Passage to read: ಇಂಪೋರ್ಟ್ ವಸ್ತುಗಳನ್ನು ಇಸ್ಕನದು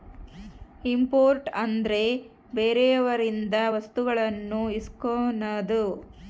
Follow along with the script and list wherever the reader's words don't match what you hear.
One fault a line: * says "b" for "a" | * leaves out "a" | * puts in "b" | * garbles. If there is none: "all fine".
* puts in "ಅಂದ್ರೆ ಬೇರೆಯವರಿಂದ"